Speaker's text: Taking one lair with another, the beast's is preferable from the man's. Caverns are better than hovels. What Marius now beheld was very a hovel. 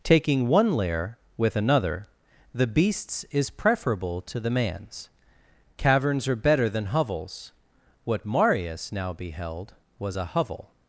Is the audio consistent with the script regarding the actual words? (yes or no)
no